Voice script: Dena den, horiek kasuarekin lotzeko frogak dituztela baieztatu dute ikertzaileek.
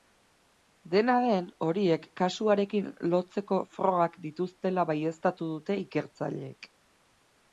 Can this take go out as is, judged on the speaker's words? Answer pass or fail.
pass